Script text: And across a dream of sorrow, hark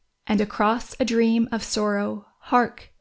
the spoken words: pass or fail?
pass